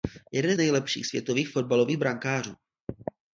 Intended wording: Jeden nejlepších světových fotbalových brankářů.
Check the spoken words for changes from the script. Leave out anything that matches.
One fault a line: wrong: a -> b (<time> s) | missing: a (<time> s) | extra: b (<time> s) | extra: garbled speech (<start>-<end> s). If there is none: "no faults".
no faults